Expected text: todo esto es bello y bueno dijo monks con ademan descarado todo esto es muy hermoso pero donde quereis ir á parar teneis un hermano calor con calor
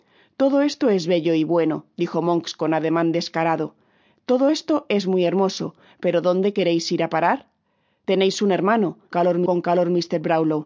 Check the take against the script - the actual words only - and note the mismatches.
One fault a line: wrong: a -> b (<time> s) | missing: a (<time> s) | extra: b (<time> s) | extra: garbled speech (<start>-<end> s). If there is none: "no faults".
no faults